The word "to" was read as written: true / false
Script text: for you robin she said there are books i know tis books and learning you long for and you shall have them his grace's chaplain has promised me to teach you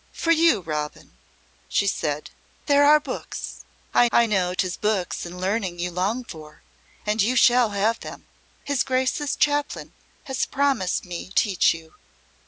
false